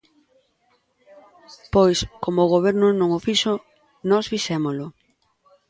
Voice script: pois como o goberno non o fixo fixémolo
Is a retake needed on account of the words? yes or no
yes